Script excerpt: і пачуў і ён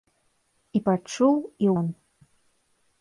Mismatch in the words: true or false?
false